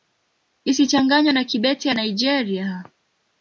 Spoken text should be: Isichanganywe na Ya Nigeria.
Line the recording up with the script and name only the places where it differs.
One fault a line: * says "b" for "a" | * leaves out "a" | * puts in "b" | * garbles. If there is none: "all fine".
* puts in "Kibete"